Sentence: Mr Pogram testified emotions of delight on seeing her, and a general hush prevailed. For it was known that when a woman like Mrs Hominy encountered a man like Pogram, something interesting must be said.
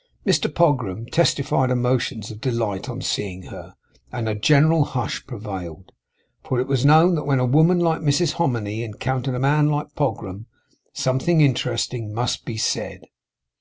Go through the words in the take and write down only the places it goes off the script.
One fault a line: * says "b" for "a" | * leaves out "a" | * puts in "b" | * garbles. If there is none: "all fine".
all fine